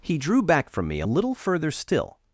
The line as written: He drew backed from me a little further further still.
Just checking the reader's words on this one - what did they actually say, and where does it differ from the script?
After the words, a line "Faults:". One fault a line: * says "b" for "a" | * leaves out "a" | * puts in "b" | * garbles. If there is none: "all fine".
He drew back from me a little further still.
Faults:
* says "back" for "backed"
* leaves out "further"